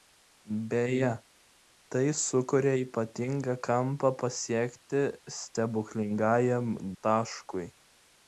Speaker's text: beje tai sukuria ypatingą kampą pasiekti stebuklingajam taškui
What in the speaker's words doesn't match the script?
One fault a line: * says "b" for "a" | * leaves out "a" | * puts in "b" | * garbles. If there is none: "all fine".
all fine